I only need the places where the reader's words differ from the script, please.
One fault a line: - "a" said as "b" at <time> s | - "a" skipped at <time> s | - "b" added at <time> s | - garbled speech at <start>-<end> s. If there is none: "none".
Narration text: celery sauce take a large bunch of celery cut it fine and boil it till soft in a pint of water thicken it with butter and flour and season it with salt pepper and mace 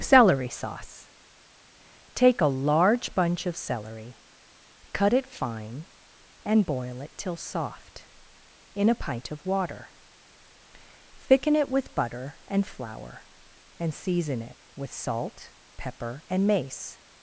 none